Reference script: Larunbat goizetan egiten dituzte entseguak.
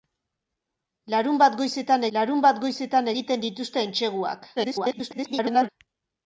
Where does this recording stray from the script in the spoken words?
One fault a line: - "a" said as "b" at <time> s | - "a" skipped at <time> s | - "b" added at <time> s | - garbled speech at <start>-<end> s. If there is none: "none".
- "larunbat goizetan" added at 2.2 s
- garbled speech at 4.6-5.7 s